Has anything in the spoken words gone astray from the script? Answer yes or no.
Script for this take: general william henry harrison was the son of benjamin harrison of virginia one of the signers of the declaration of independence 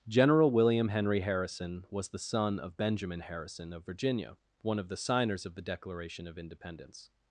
no